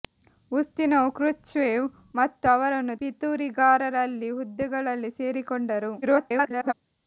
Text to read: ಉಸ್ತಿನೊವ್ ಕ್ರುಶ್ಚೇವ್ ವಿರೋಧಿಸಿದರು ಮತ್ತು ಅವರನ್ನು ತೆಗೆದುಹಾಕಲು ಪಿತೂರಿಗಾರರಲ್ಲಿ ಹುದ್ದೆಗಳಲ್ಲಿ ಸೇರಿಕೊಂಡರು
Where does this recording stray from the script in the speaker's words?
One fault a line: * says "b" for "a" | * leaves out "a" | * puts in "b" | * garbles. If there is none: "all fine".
* leaves out "ವಿರೋಧಿಸಿದರು"
* leaves out "ತೆಗೆದುಹಾಕಲು"
* garbles